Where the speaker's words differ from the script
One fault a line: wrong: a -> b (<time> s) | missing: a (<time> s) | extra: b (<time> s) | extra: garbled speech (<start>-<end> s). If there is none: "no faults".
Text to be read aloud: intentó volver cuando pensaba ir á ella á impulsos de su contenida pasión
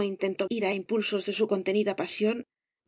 missing: volver cuando pensaba (0.5 s)
missing: ella (0.7 s)